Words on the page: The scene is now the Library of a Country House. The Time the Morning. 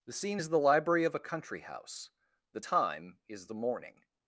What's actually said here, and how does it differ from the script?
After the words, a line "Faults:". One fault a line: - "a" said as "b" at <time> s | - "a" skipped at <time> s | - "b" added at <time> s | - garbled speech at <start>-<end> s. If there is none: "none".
The scene is the Library of a Country House. The Time is the Morning.
Faults:
- "now" skipped at 0.5 s
- "is" added at 3.3 s